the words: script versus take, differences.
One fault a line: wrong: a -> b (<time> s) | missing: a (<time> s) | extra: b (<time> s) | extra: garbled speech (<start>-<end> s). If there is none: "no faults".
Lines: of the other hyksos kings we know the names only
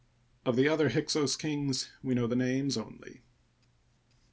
no faults